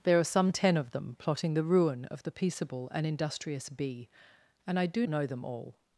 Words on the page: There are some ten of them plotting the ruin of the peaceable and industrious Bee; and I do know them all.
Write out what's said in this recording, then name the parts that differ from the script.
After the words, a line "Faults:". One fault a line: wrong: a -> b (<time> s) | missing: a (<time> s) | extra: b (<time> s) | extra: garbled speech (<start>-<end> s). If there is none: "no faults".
There are some ten of them plotting the ruin of the peaceable and industrious Bee; and I do know them all.
Faults:
no faults